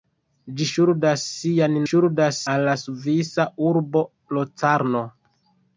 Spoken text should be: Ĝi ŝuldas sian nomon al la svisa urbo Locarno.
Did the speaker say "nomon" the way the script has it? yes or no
no